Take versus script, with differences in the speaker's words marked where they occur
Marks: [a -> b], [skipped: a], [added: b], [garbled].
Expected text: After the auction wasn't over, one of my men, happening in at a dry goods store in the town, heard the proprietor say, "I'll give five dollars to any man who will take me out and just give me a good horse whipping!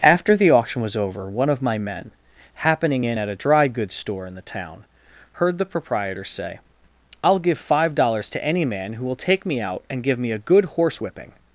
After the auction [wasn't -> was] over, one of my men, happening in at a dry goods store in the town, heard the proprietor say, "I'll give five dollars to any man who will take me out and [skipped: just] give me a good horse whipping!